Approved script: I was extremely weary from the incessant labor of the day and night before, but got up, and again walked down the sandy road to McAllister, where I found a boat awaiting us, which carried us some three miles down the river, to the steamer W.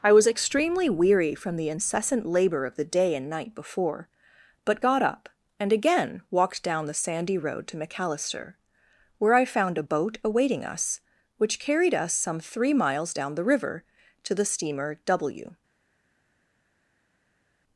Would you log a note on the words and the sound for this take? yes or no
no